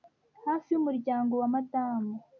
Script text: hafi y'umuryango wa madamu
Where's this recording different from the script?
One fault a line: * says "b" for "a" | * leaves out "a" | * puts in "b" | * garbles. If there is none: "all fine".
all fine